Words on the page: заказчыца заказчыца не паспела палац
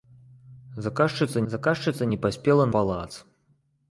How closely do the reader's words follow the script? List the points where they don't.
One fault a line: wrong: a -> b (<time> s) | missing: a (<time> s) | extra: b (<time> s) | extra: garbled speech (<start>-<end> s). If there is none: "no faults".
no faults